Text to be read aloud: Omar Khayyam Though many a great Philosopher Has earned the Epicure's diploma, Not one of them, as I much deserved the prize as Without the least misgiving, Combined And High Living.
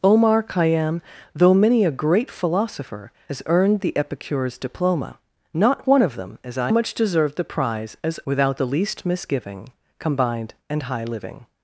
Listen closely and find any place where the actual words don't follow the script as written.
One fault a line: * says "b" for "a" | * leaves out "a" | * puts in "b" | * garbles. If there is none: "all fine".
all fine